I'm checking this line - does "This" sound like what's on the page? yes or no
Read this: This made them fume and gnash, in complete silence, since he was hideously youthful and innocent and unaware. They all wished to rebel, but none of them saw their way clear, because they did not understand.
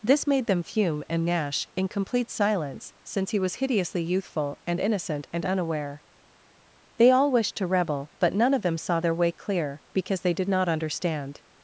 yes